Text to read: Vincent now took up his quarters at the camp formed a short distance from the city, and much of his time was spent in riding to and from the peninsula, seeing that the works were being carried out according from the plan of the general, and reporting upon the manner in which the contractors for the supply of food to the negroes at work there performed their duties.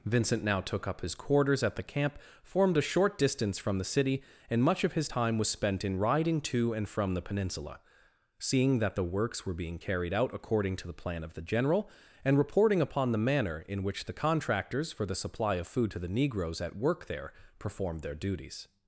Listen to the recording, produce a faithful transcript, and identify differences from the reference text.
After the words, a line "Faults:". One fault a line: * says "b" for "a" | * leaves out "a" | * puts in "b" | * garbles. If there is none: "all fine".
Vincent now took up his quarters at the camp formed a short distance from the city, and much of his time was spent in riding to and from the peninsula, seeing that the works were being carried out according to the plan of the general, and reporting upon the manner in which the contractors for the supply of food to the negroes at work there performed their duties.
Faults:
* says "to" for "from"